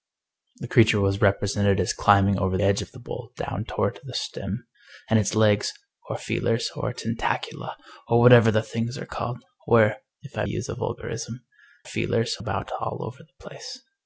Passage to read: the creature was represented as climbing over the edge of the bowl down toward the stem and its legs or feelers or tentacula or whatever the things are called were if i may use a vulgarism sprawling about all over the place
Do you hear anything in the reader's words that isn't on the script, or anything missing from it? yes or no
yes